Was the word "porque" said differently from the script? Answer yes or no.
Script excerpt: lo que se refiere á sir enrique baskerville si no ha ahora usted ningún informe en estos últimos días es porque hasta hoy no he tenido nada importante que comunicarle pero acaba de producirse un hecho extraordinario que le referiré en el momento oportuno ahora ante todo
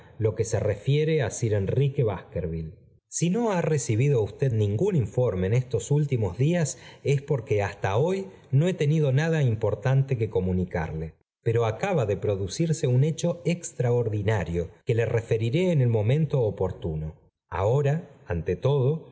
no